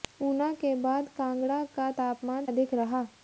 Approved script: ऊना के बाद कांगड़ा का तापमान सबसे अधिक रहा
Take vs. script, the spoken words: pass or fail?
fail